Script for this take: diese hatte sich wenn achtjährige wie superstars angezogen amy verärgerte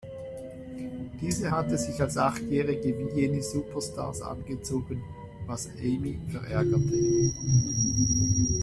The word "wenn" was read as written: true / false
false